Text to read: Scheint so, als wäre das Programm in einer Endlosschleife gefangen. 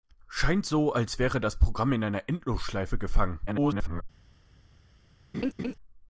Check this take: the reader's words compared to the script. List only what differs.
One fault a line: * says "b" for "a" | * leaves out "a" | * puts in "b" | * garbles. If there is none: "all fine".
* garbles